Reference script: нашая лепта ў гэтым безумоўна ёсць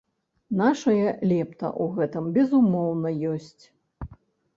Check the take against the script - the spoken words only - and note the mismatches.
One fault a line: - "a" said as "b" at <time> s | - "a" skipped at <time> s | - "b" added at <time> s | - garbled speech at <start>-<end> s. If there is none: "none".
none